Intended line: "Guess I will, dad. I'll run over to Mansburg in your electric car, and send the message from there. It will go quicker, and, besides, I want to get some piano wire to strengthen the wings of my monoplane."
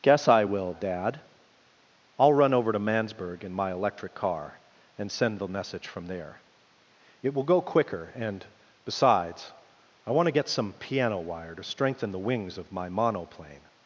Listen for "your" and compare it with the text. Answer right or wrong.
wrong